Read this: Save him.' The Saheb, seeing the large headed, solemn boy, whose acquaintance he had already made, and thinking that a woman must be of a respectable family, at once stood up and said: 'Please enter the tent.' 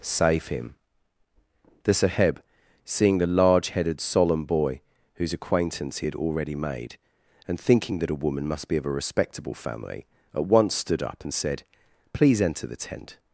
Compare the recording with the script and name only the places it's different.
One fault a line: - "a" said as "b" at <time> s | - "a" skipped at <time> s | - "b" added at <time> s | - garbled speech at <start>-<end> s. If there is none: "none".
none